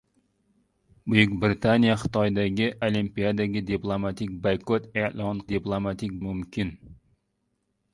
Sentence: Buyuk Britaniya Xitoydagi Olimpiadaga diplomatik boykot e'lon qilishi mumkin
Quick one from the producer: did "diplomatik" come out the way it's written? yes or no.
yes